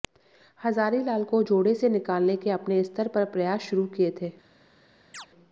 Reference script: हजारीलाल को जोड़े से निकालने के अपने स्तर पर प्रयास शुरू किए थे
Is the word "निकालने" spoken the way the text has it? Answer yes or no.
yes